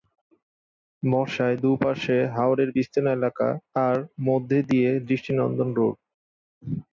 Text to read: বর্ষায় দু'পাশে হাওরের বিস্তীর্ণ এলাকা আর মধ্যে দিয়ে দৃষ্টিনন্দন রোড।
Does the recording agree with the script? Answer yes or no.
yes